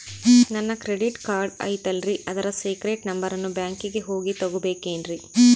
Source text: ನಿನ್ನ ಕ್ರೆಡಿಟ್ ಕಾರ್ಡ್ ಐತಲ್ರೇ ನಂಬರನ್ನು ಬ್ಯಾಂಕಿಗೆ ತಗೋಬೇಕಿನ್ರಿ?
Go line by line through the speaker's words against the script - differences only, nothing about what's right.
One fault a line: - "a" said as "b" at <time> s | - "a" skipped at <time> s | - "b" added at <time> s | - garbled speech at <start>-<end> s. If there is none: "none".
- "ನಿನ್ನ" said as "ನನ್ನ" at 0.5 s
- "ಅದರ ಸೇಕ್ರೇಟ್" added at 2.3 s
- "ಹೋಗಿ" added at 4.0 s